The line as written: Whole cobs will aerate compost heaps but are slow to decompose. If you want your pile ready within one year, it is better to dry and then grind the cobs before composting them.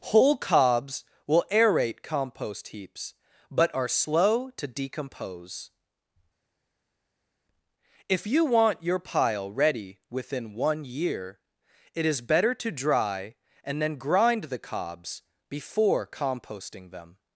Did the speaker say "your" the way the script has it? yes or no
yes